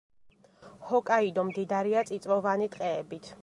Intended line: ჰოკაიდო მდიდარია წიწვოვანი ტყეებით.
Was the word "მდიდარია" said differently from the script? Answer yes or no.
no